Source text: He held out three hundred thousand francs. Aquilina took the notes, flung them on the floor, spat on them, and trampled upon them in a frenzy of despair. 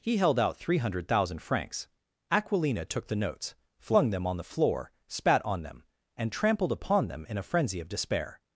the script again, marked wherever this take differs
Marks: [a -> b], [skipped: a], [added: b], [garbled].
He held out three hundred thousand francs. Aquilina took the notes, flung them on the floor, spat on them, and trampled upon them in a frenzy of despair.